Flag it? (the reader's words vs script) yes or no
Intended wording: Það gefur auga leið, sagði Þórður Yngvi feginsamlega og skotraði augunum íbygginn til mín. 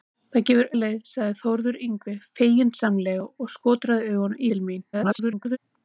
yes